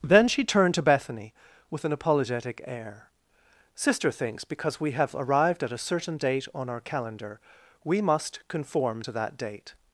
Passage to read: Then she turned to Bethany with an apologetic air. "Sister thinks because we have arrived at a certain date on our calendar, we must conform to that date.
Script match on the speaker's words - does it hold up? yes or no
yes